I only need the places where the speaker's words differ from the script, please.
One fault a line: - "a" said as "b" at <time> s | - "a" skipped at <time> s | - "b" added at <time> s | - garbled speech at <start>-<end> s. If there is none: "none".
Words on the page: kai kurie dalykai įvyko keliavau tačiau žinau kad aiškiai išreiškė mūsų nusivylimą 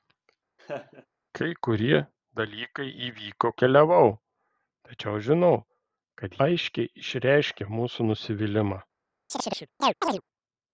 none